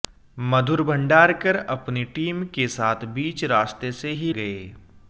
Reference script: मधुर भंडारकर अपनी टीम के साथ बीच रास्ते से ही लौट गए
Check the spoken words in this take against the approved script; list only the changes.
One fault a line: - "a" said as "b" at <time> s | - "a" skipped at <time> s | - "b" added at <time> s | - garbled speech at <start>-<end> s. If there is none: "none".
- "लौट" skipped at 4.3 s